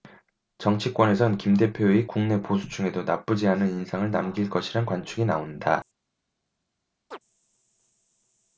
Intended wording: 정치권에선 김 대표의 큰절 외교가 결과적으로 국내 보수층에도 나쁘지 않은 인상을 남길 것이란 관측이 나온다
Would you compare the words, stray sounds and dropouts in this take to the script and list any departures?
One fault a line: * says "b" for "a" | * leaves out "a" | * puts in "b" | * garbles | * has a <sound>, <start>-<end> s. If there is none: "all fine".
* leaves out "큰절 외교가 결과적으로"
* has a chirp, 7.1-7.2 s